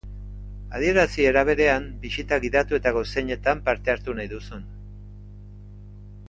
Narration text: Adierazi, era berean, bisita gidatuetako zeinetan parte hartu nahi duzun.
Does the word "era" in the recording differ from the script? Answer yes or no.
no